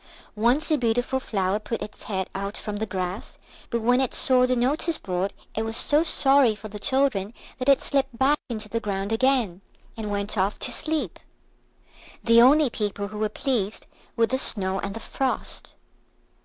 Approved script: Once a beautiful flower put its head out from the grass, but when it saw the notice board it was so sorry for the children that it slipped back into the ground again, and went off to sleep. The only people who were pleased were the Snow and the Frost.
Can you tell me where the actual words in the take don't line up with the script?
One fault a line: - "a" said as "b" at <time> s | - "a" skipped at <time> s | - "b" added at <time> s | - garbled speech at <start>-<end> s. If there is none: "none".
none